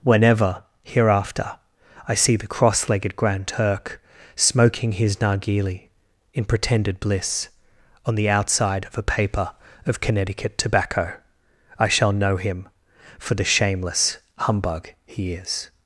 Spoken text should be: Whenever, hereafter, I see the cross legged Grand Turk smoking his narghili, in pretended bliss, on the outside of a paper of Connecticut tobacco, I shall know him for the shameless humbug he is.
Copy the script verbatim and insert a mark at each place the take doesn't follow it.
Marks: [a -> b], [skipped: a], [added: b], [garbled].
Whenever, hereafter, I see the cross legged Grand Turk smoking his narghili, in pretended bliss, on the outside of a paper of Connecticut tobacco, I shall know him for the shameless humbug he is.